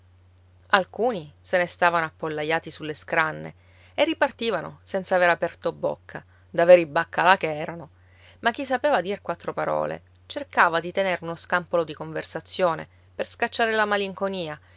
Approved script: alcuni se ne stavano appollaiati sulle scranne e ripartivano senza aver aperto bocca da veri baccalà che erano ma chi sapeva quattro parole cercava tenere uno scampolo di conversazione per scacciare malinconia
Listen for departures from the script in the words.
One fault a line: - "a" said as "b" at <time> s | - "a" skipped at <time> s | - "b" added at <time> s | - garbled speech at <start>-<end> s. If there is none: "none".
- "dir" added at 9.0 s
- "di" added at 10.8 s
- "la" added at 13.7 s